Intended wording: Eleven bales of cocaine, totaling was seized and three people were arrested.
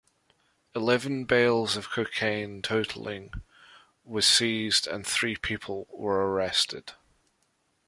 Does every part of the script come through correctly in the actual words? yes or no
yes